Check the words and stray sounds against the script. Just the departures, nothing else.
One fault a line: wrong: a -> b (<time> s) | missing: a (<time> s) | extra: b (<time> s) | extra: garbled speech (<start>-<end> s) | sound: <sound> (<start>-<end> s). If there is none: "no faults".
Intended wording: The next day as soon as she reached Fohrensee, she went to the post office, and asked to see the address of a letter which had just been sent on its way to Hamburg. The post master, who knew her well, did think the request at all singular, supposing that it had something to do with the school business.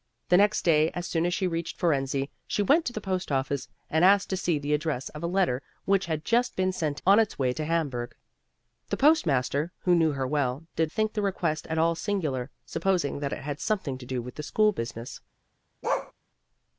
sound: bark (15.8-16.1 s)